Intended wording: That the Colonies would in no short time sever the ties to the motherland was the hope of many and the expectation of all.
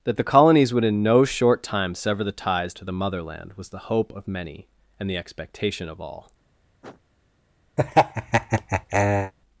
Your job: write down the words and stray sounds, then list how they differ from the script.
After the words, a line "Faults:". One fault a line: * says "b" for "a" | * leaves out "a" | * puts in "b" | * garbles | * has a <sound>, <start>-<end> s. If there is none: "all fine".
That the Colonies would in no short time sever the ties to the motherland was the hope of many and the expectation of all.
Faults:
* has a sniff, 6.8-7.0 s
* has a laugh, 7.8-9.3 s